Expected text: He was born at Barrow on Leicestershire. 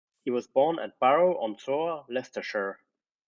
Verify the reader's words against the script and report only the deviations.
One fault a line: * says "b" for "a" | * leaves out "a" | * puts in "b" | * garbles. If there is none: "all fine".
* puts in "Soar"